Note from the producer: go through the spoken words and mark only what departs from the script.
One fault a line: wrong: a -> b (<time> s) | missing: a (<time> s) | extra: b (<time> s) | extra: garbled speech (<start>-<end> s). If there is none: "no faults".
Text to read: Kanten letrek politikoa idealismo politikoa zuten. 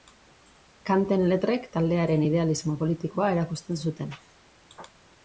wrong: politikoa -> taldearen (1.8 s)
extra: erakusten (3.4 s)